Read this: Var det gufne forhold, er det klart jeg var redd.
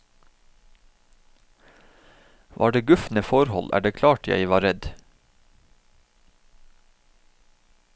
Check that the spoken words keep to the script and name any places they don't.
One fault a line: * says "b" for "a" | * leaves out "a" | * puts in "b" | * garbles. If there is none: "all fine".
all fine